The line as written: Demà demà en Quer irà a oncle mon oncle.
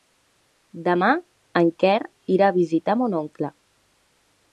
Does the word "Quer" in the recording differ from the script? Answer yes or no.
no